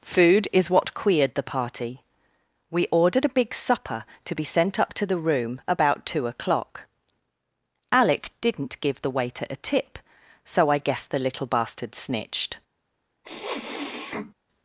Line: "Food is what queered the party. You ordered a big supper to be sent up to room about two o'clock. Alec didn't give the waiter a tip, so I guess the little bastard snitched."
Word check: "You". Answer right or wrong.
wrong